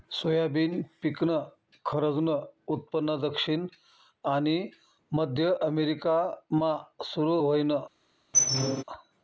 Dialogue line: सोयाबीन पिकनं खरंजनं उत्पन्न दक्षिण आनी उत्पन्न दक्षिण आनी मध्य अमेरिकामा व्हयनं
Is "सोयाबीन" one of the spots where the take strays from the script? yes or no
no